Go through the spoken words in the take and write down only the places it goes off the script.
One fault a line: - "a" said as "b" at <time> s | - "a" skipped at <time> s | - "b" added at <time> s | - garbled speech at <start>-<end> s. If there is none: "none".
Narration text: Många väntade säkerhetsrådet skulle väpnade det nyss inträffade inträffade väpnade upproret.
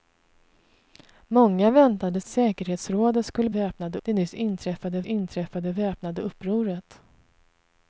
none